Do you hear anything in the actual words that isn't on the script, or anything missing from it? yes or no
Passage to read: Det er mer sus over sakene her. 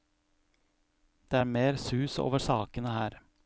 no